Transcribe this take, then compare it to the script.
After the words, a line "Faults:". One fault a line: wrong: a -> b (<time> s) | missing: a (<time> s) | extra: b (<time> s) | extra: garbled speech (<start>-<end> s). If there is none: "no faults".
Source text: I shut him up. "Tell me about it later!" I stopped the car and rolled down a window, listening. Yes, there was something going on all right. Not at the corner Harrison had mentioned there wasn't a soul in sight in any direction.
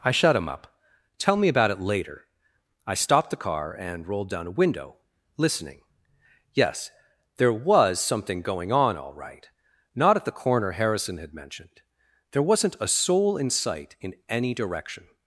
I shut him up. "Tell me about it later!" I stopped the car and rolled down a window, listening. Yes, there was something going on all right. Not at the corner Harrison had mentioned there wasn't a soul in sight in any direction.
Faults:
no faults